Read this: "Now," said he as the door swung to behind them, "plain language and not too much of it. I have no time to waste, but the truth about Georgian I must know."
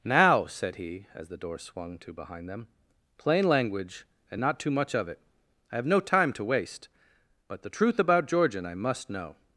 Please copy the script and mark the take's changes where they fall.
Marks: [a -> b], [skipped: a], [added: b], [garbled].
"Now," said he as the door swung to behind them, "plain language and not too much of it. I have no time to waste, but the truth about Georgian I must know."